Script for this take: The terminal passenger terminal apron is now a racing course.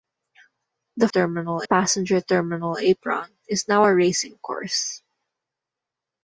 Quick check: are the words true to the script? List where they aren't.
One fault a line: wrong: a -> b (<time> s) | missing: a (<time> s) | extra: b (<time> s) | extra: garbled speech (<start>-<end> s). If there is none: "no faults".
no faults